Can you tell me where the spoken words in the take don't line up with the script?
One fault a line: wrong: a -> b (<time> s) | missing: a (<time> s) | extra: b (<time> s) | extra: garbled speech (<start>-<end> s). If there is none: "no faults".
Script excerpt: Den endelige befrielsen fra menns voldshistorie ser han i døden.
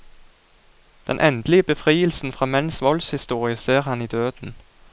no faults